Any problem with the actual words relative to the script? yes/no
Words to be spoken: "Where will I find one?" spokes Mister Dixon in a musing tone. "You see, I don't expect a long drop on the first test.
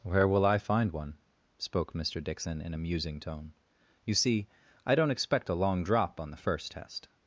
yes